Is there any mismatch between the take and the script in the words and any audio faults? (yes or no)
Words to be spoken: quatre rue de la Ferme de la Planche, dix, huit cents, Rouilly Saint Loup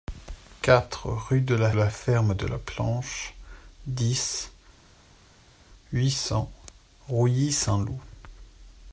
yes